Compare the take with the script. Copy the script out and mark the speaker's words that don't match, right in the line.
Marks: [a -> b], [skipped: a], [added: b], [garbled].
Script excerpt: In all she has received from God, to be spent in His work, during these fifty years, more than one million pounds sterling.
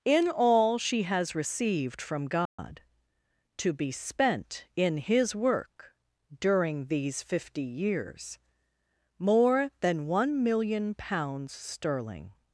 In all she has received from God, to be spent in His work, during these fifty years, more than one million pounds sterling.